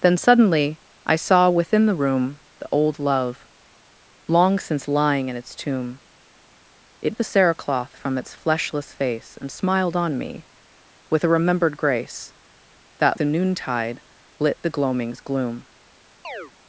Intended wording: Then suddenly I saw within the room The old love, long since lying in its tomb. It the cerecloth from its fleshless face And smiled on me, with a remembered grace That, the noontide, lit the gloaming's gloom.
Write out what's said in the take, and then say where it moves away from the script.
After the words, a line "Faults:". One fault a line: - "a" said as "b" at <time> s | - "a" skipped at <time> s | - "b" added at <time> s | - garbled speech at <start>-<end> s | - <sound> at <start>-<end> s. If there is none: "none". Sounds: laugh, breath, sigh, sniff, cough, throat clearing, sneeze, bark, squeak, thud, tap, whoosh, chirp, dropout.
Then suddenly I saw within the room The old love, long since lying in its tomb. It the cerecloth from its fleshless face And smiled on me, with a remembered grace That, the noontide, lit the gloaming's gloom.
Faults:
- chirp at 16.2-16.5 s